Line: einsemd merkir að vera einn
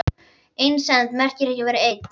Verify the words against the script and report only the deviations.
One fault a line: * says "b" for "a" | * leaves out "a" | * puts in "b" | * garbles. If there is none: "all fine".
* puts in "ekki"